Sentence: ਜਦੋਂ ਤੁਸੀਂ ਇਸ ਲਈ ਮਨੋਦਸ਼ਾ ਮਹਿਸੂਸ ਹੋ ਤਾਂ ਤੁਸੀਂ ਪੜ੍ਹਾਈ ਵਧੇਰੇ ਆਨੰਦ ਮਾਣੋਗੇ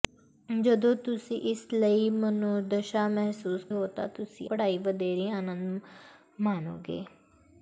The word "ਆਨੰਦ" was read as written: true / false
true